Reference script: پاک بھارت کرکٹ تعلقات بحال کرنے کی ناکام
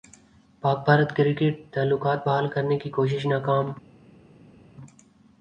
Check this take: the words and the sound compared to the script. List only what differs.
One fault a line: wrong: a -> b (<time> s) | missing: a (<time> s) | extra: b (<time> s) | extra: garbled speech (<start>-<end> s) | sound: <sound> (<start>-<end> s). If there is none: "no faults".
extra: کوشش (3.0 s)